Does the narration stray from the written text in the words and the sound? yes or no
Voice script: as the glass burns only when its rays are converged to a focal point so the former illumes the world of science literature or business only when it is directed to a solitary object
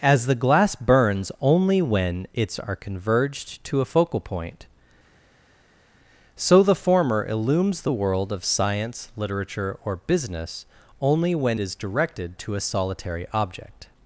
yes